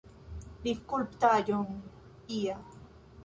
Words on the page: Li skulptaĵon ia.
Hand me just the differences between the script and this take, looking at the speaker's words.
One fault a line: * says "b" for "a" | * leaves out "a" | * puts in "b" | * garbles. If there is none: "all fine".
all fine